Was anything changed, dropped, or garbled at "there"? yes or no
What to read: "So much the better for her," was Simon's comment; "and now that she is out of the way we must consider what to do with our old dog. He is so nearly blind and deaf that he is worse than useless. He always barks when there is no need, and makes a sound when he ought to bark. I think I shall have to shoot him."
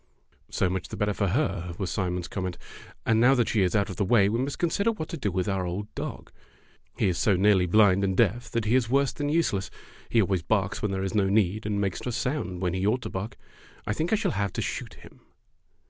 no